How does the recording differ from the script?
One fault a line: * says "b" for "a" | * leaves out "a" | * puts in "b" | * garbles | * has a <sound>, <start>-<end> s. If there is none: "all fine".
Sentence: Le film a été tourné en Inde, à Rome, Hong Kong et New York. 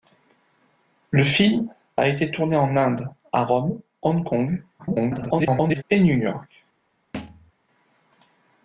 * garbles
* has a thud, 7.1-7.5 s